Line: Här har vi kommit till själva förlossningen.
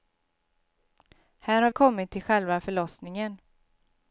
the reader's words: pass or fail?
fail